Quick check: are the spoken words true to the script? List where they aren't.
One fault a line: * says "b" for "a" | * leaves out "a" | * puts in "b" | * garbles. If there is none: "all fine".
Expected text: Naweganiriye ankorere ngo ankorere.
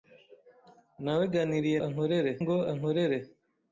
all fine